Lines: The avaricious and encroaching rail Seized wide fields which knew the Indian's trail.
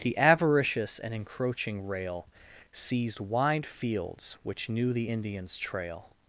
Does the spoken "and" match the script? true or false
true